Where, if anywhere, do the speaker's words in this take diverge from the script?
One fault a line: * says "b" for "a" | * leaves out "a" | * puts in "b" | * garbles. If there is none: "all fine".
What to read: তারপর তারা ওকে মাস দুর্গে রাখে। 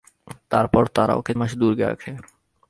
all fine